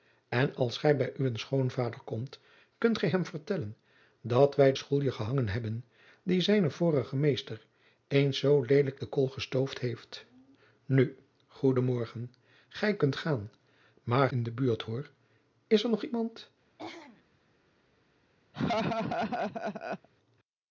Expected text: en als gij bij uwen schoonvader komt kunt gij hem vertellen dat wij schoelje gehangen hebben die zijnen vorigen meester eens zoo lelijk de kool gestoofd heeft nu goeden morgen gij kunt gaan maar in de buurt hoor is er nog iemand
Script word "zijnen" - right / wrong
right